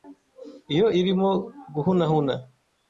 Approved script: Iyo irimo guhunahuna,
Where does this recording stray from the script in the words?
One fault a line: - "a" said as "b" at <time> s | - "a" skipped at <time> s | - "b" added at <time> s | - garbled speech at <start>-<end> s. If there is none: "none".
none